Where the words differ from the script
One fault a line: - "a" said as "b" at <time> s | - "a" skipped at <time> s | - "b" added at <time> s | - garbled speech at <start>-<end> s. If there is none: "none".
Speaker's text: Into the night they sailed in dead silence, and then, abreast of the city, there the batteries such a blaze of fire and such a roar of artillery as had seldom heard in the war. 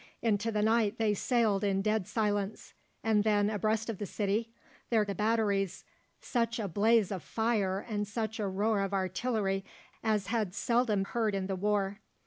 none